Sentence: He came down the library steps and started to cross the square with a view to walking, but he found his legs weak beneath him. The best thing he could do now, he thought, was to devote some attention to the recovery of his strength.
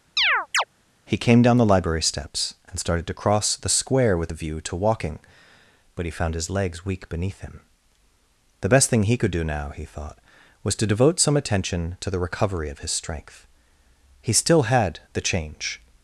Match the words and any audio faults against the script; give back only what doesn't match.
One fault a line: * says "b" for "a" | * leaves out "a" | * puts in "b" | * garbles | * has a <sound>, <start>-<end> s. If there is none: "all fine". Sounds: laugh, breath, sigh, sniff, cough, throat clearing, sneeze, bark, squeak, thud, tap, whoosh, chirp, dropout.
* has a chirp, 0.2-0.6 s
* puts in "He still had the change"